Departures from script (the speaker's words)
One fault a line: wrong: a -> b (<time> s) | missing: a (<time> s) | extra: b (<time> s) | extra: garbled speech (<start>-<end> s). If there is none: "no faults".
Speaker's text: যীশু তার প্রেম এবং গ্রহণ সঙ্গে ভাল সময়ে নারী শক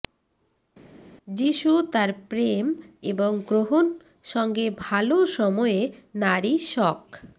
no faults